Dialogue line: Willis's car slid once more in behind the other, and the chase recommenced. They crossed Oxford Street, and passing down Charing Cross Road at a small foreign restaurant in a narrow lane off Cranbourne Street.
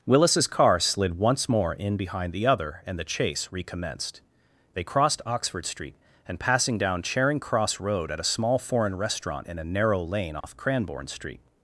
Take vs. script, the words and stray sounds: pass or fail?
fail